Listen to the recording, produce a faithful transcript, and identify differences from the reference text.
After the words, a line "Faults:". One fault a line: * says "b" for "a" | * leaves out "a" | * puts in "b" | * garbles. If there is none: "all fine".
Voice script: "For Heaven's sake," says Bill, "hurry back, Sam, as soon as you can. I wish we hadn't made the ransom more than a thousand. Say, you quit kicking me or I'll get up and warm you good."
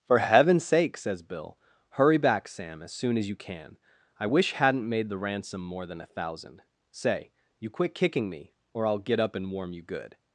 "For Heaven's sake," says Bill, "hurry back, Sam, as soon as you can. I wish hadn't made the ransom more than a thousand. Say, you quit kicking me or I'll get up and warm you good."
Faults:
* leaves out "we"